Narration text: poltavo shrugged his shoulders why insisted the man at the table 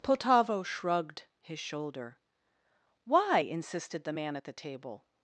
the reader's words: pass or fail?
fail